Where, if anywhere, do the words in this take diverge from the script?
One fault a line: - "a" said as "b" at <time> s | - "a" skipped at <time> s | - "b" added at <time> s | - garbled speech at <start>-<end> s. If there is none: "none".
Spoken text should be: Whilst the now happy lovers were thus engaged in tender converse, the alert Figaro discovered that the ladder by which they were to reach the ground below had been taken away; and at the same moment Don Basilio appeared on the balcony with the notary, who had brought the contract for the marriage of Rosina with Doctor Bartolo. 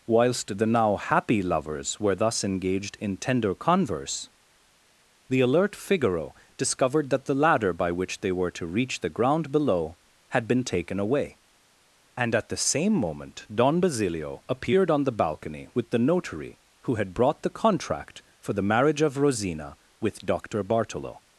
none